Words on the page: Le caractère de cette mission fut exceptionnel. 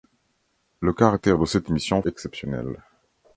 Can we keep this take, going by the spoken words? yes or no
no